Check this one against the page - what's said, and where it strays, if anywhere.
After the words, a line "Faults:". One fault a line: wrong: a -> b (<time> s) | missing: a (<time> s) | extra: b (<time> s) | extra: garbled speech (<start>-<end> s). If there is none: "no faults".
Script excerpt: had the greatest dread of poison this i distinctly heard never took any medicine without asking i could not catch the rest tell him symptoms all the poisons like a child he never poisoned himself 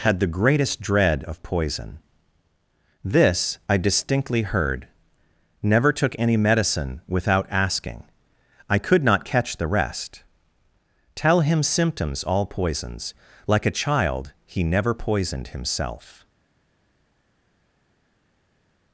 had the greatest dread of poison this i distinctly heard never took any medicine without asking i could not catch the rest tell him symptoms all poisons like a child he never poisoned himself
Faults:
missing: the (12.4 s)